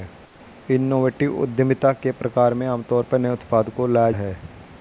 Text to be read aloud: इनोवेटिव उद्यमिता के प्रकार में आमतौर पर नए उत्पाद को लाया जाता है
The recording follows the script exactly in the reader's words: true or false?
false